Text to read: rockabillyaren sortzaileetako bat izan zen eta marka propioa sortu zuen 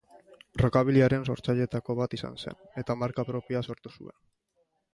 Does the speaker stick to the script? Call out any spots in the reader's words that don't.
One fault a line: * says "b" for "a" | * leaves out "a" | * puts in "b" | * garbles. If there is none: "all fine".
all fine